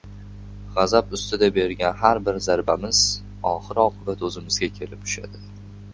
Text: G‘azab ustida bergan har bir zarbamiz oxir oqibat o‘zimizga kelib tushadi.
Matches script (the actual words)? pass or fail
pass